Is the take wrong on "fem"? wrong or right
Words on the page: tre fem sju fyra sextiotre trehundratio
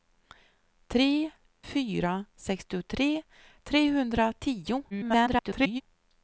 wrong